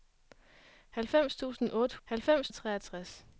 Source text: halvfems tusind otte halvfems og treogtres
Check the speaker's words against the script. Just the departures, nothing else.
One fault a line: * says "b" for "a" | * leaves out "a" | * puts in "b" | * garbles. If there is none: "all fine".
all fine